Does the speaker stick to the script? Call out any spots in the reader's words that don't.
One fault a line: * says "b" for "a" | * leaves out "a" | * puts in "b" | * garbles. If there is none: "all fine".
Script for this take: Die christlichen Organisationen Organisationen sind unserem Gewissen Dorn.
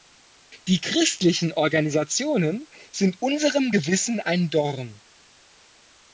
* leaves out "Organisationen"
* puts in "ein"